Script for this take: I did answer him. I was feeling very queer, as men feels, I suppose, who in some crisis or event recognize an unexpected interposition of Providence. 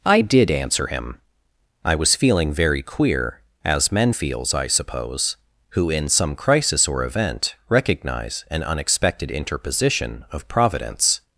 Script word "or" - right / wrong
right